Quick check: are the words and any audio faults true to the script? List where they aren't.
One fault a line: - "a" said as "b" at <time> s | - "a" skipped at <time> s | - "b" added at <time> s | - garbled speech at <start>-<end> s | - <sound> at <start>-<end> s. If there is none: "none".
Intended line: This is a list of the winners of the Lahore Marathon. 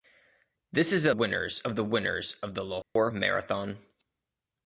- "list" said as "winners" at 1.1 s
- dropout at 2.8-3.0 s